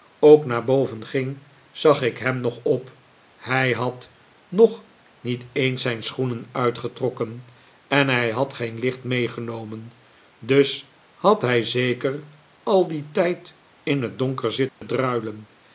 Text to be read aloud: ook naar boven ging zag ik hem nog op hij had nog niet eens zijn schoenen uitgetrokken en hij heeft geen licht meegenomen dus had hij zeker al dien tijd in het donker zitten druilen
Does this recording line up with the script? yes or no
no